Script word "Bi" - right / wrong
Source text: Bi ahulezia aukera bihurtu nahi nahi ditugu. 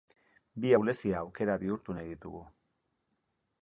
right